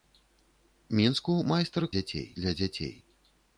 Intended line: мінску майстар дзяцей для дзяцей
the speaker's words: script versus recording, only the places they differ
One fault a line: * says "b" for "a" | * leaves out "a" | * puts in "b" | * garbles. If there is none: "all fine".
all fine